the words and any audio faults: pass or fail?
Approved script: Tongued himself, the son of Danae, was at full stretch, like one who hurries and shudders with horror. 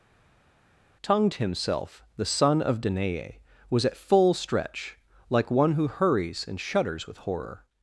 pass